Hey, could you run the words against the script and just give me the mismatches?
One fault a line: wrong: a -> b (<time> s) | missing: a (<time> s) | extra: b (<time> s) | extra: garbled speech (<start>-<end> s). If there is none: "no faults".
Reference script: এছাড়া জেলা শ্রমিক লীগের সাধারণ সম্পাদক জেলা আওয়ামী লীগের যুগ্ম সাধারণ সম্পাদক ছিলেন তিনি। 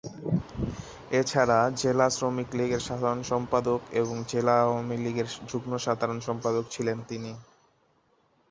extra: এবং (3.9 s)